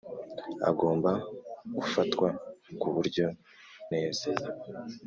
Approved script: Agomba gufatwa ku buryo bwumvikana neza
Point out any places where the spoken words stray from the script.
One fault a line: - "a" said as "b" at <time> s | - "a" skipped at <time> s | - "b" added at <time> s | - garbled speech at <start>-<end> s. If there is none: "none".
- "bwumvikana" skipped at 3.2 s